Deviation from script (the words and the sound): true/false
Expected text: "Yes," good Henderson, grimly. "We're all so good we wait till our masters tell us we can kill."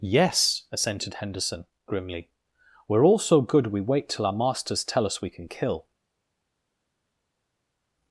true